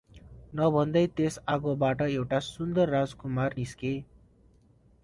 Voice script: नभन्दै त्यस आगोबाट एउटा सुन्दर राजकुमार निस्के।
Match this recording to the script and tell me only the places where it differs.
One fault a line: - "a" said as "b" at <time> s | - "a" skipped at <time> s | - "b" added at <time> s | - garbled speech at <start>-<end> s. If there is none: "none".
none